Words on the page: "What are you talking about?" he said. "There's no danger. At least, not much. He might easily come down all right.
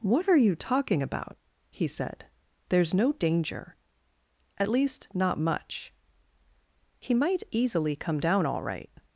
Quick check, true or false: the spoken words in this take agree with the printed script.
true